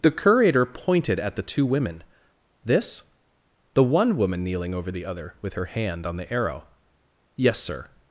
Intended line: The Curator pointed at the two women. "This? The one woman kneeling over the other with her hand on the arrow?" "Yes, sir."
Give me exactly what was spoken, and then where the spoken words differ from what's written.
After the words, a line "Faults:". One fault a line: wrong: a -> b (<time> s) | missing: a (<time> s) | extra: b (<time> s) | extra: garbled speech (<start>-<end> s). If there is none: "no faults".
The Curator pointed at the two women. "This? The one woman kneeling over the other with her hand on the arrow?" "Yes, sir."
Faults:
no faults